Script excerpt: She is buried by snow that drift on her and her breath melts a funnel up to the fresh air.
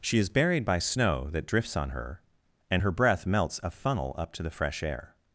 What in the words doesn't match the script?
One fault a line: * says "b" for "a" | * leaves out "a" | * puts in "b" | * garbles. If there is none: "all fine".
* says "drifts" for "drift"